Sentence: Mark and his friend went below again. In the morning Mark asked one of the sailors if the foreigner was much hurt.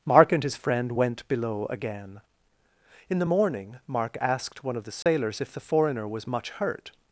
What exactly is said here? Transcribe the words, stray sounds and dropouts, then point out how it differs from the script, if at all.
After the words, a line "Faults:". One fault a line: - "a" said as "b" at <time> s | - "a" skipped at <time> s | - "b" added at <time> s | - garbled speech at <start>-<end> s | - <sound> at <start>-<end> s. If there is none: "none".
Mark and his friend went below again. In the morning Mark asked one of the sailors if the foreigner was much hurt.
Faults:
- dropout at 5.0-5.1 s